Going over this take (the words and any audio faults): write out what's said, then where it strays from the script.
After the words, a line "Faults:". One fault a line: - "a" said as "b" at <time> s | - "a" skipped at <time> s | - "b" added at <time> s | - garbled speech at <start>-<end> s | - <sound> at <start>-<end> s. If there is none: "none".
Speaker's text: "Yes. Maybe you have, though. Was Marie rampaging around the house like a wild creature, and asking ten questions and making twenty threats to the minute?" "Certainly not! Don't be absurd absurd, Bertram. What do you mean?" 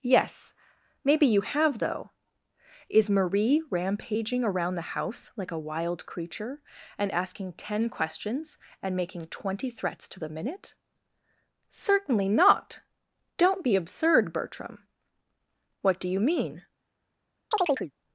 "Yes. Maybe you have, though. Is Marie rampaging around the house like a wild creature, and asking ten questions and making twenty threats to the minute?" "Certainly not! Don't be absurd, Bertram. What do you mean?"
Faults:
- "Was" said as "Is" at 2.9 s
- "absurd" skipped at 14.3 s
- chirp at 17.5-17.9 s